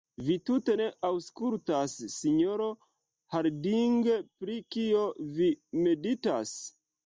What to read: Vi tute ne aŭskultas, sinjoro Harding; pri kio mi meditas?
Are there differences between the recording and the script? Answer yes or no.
yes